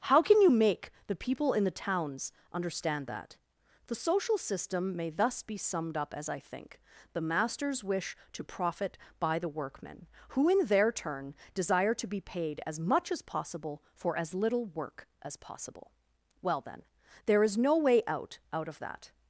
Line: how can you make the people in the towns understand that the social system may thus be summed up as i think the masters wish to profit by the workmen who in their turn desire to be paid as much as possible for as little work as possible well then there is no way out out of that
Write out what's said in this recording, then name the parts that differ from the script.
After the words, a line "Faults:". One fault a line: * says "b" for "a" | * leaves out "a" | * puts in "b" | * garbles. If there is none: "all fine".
how can you make the people in the towns understand that the social system may thus be summed up as i think the masters wish to profit by the workmen who in their turn desire to be paid as much as possible for as little work as possible well then there is no way out out of that
Faults:
all fine